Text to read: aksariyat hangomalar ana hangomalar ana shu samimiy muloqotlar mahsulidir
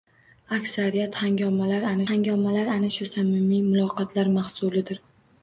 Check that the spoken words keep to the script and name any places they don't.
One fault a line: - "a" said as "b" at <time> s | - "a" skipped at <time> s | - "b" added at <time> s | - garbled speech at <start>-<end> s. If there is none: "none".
none